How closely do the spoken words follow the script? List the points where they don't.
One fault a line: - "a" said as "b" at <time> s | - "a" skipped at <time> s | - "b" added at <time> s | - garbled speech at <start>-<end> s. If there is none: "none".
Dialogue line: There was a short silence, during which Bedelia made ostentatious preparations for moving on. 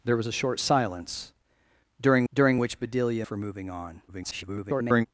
- "during" added at 2.3 s
- "made ostentatious preparations" skipped at 3.3 s
- garbled speech at 4.1-5.1 s